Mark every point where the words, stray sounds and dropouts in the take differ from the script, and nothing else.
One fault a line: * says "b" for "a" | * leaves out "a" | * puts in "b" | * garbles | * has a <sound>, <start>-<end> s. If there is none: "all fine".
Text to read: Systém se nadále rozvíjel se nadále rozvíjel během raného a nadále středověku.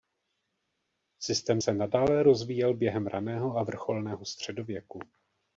* leaves out "se nadále rozvíjel"
* says "vrcholného" for "nadále"